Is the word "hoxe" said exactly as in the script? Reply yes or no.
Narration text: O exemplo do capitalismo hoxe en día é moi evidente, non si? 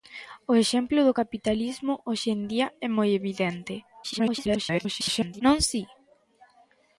yes